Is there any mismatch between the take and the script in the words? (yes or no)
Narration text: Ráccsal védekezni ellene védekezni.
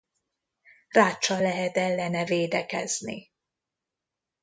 yes